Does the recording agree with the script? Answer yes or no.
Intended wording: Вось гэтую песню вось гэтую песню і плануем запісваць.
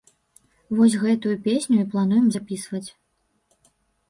no